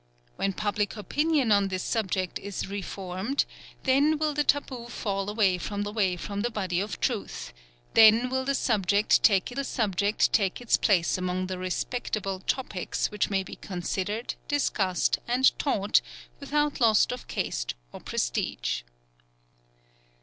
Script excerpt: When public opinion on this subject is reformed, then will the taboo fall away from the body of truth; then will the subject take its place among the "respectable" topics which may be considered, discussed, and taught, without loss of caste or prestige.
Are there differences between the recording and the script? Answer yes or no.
yes